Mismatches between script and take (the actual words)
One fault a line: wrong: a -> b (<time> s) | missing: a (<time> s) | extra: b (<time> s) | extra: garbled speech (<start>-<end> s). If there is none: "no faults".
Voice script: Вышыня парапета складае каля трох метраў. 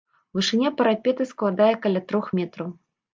no faults